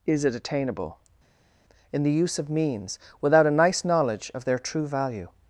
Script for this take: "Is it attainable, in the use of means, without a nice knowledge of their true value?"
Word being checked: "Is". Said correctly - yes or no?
yes